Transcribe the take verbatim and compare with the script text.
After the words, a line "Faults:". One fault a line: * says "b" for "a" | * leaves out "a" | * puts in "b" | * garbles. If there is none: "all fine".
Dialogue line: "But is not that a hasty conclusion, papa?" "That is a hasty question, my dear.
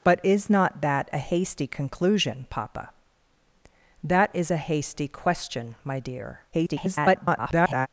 "But is not that a hasty conclusion, papa?" "That is a hasty question, my dear. [garbled]
Faults:
* garbles